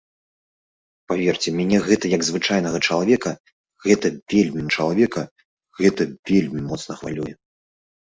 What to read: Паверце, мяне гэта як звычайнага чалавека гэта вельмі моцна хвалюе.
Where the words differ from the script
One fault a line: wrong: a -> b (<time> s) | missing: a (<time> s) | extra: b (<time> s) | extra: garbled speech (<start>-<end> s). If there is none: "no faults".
extra: чалавека гэта вельмі (4.8 s)